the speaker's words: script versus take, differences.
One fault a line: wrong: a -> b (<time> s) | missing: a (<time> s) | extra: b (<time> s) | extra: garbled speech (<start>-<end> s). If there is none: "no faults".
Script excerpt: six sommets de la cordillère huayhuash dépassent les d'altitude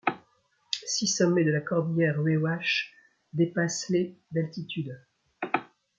no faults